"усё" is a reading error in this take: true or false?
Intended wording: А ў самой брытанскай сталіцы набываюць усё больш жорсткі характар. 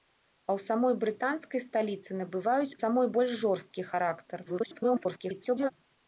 true